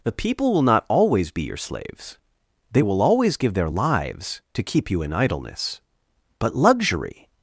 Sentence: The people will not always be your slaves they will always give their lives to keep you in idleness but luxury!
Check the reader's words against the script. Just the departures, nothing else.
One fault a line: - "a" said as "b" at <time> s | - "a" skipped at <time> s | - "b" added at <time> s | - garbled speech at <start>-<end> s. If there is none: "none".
none